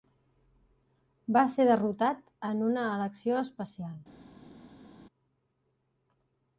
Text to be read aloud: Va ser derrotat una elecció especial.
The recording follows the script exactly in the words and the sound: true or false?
false